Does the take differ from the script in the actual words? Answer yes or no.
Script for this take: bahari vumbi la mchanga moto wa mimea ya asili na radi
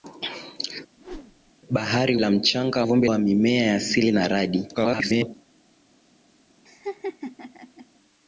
yes